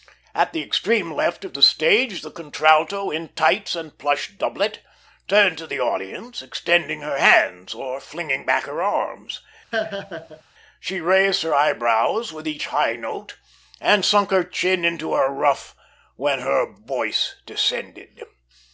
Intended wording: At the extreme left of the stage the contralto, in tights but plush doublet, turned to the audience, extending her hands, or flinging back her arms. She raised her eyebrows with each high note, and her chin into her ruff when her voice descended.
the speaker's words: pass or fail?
fail